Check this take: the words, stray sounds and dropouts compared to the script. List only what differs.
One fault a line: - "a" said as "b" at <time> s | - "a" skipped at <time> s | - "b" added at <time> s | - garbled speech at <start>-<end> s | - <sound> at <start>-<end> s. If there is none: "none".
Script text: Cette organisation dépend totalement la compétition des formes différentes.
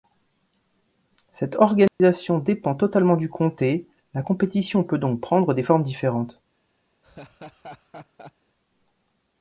- dropout at 1.9-2.0 s
- "du comté" added at 3.2 s
- "peut donc prendre" added at 4.8 s
- laugh at 7.0-8.3 s